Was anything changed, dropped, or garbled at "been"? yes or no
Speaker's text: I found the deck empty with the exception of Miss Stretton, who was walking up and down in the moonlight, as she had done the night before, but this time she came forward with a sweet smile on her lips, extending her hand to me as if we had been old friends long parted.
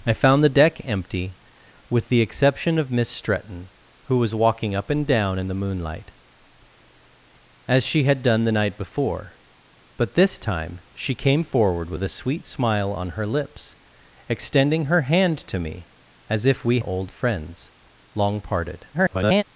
yes